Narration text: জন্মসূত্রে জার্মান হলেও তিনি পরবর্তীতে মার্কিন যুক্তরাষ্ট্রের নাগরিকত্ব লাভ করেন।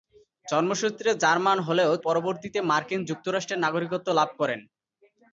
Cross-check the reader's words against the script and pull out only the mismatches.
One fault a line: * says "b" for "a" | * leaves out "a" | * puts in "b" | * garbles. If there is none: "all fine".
* leaves out "তিনি"